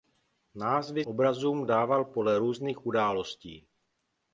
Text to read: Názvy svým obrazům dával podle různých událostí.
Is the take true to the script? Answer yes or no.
no